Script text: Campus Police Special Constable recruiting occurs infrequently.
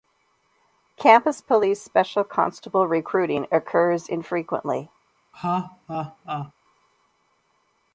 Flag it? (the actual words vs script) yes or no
no